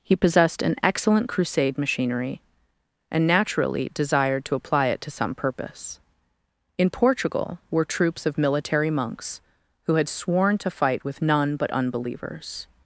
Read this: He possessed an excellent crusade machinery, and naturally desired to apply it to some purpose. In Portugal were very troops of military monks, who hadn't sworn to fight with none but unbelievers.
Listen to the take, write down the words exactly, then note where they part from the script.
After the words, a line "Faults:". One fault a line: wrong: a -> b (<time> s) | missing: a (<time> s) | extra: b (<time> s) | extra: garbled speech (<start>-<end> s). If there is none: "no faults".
He possessed an excellent crusade machinery, and naturally desired to apply it to some purpose. In Portugal were troops of military monks, who had sworn to fight with none but unbelievers.
Faults:
missing: very (7.8 s)
wrong: hadn't -> had (9.9 s)